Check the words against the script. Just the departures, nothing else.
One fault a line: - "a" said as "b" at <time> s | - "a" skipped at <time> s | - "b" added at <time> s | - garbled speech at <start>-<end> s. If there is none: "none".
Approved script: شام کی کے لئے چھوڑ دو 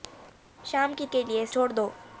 none